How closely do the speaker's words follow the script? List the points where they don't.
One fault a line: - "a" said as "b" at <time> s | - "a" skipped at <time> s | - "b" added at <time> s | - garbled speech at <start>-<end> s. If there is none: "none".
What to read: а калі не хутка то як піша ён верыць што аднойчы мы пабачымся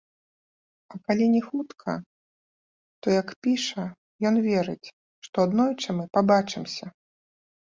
none